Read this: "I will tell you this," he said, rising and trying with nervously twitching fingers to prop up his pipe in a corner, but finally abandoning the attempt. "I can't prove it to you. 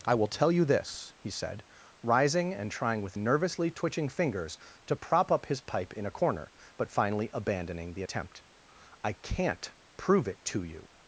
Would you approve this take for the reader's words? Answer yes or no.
yes